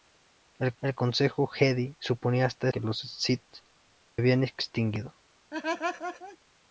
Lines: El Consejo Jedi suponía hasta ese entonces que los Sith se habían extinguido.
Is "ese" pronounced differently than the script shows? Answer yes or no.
yes